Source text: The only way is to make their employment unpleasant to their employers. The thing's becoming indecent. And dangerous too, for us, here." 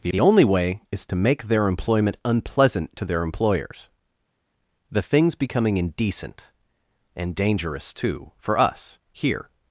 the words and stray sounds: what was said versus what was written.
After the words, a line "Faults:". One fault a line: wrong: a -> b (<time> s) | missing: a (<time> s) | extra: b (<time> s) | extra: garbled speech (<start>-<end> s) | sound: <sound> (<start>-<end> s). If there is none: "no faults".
The the only way is to make their employment unpleasant to their employers. The thing's becoming indecent. And dangerous too, for us, here."
Faults:
extra: the (0.1 s)